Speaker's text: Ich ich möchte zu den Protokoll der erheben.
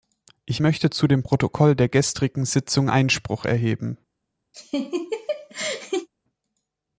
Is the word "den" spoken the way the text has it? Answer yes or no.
no